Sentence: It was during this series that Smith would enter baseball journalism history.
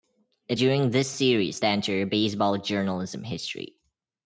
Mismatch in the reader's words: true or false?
true